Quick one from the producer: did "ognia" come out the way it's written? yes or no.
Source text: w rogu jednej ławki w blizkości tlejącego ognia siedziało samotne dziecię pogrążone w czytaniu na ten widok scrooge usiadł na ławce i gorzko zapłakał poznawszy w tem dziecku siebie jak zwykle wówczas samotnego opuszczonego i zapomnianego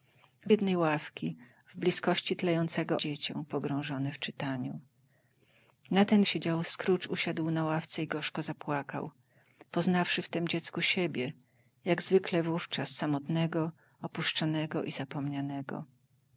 no